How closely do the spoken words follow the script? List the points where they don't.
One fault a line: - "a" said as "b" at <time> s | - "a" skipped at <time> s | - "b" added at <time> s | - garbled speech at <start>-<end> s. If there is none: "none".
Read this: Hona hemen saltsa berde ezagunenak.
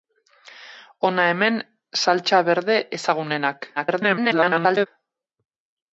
- garbled speech at 3.8-4.9 s